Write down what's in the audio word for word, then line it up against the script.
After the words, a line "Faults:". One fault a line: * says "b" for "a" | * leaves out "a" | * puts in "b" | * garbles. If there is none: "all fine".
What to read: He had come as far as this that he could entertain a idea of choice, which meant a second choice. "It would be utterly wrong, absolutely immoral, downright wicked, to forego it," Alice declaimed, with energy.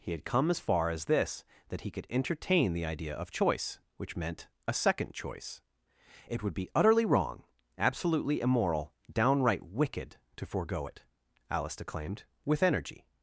He had come as far as this that he could entertain the idea of choice, which meant a second choice. "It would be utterly wrong, absolutely immoral, downright wicked, to forego it," Alice declaimed, with energy.
Faults:
* says "the" for "a"